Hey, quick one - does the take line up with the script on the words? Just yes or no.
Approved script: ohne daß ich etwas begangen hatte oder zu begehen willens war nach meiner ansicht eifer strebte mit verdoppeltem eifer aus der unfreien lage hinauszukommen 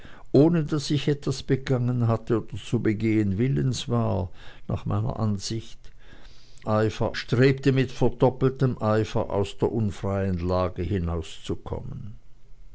yes